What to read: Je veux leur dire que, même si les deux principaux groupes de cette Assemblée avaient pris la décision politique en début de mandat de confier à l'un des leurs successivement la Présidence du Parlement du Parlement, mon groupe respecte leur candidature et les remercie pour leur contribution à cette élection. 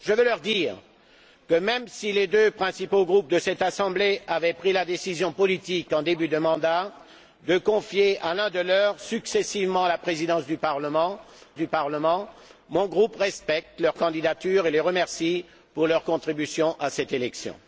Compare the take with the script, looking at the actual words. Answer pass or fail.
pass